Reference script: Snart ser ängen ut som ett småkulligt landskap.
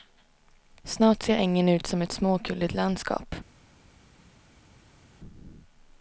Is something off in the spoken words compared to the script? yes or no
no